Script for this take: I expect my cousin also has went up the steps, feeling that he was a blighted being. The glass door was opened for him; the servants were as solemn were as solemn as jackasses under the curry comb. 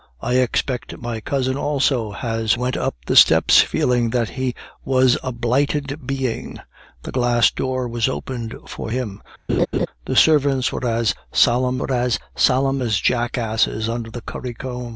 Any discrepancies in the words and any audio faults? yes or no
yes